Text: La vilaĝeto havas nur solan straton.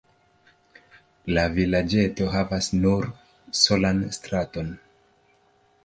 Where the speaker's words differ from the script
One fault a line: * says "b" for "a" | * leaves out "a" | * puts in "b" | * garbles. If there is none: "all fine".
all fine